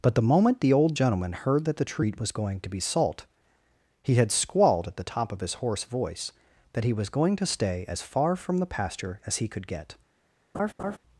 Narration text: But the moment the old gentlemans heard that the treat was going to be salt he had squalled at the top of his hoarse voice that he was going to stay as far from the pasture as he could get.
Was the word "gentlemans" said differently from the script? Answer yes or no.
yes